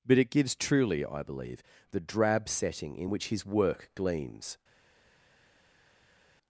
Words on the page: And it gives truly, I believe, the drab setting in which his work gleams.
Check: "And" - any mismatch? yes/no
yes